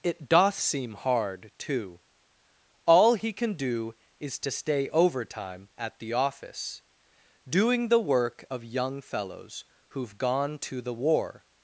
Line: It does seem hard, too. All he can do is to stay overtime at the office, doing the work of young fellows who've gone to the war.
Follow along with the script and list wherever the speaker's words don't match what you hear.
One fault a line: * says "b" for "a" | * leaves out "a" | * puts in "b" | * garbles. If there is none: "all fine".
* says "doth" for "does"